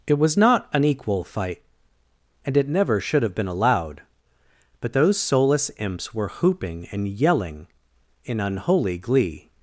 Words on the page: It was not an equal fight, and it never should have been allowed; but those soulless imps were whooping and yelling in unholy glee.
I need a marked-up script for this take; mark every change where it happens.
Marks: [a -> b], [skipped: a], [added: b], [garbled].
It was not an equal fight, and it never should have been allowed; but those soulless imps were whooping and yelling in unholy glee.